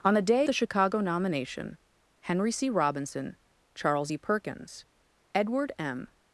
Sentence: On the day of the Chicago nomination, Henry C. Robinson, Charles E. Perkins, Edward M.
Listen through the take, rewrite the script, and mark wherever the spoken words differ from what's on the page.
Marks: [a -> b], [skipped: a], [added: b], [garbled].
On the day [skipped: of] the Chicago nomination, Henry C. Robinson, Charles E. Perkins, Edward M.